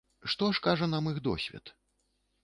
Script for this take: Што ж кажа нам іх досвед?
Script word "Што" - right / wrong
right